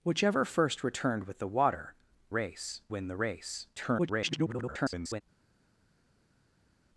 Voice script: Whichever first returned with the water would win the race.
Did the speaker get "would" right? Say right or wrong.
wrong